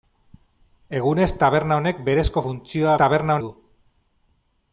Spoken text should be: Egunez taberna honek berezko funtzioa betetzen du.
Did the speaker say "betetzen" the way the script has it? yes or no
no